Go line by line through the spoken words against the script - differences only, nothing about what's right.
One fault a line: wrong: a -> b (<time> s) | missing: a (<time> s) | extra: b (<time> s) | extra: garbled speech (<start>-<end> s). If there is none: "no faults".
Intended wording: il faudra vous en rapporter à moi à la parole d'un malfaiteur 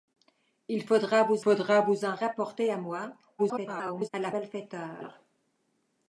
extra: faudra vous (1.4 s)
extra: garbled speech (3.4-4.1 s)
missing: parole d'un (4.3 s)